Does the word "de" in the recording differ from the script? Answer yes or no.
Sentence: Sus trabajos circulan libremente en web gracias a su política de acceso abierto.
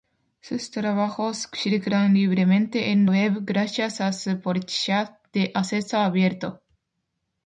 no